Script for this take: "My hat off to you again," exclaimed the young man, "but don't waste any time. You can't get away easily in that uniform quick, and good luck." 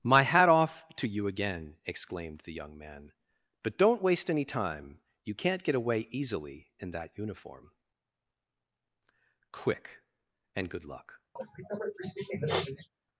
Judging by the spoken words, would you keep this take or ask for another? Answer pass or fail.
pass